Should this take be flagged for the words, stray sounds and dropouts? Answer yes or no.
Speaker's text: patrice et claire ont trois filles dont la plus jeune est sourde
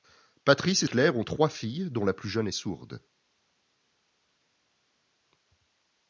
no